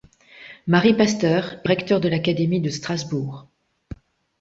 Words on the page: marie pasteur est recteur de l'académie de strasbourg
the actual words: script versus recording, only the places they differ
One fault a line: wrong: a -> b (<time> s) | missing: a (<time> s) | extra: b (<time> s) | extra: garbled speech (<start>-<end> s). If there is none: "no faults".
no faults